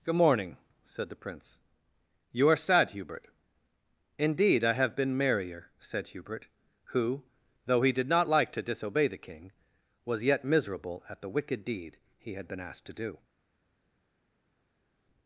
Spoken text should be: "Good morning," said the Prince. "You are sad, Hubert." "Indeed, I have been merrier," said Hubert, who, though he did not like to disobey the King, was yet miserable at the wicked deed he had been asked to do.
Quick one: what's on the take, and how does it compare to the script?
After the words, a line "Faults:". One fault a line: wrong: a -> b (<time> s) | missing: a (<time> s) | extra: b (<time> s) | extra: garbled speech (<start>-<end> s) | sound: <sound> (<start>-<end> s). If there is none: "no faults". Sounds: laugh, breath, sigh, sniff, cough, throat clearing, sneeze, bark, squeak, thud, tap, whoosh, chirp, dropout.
"Good morning," said the Prince. "You are sad, Hubert." "Indeed, I have been merrier," said Hubert, who, though he did not like to disobey the King, was yet miserable at the wicked deed he had been asked to do.
Faults:
no faults